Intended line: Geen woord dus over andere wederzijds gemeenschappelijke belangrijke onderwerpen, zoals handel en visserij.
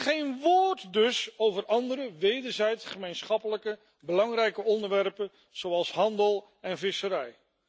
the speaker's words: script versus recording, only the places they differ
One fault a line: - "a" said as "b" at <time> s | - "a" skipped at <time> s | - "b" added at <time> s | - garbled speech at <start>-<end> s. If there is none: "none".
none